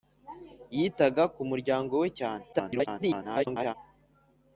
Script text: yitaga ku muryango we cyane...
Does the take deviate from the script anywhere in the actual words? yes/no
yes